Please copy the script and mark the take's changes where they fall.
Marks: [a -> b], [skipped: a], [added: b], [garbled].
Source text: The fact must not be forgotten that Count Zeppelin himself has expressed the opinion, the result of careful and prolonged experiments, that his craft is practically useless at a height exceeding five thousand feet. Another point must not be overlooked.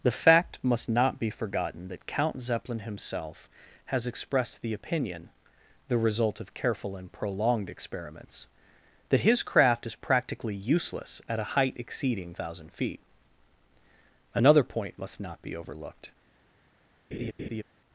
The fact must not be forgotten that Count Zeppelin himself has expressed the opinion, the result of careful and prolonged experiments, that his craft is practically useless at a height exceeding [skipped: five] thousand feet. Another point must not be overlooked.